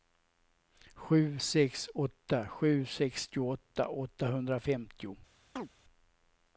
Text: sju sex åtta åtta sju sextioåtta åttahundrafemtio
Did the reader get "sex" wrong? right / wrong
right